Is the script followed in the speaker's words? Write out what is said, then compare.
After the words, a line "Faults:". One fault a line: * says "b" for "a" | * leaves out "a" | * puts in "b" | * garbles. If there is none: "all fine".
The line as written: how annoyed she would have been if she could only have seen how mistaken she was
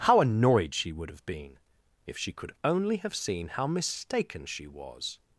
how annoyed she would have been if she could only have seen how mistaken she was
Faults:
all fine